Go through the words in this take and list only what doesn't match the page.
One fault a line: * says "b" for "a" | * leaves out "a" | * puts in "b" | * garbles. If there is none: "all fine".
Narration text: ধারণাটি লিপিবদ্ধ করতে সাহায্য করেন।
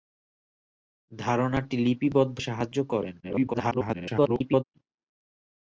* leaves out "করতে"
* garbles